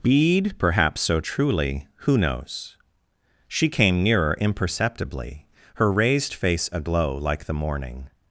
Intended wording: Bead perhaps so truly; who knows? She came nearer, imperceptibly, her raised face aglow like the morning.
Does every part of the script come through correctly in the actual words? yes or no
yes